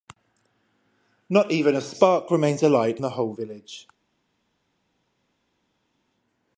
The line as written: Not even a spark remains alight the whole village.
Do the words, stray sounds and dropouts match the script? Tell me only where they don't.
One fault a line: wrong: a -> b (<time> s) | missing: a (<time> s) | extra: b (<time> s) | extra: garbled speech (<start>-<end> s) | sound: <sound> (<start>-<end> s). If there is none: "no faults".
no faults